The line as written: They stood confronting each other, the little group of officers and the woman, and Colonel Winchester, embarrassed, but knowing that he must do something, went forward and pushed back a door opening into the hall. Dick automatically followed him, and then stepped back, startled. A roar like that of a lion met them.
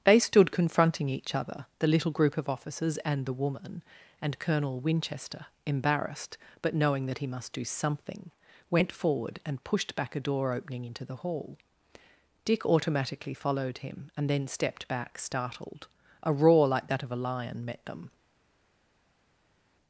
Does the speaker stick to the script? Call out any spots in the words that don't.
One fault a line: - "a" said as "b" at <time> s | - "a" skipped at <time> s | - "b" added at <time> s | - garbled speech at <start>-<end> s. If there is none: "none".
none